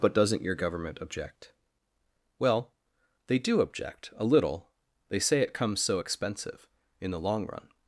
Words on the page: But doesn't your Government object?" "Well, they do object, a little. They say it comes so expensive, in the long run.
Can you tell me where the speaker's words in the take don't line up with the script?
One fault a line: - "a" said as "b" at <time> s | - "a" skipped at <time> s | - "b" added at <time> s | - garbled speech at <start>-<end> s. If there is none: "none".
none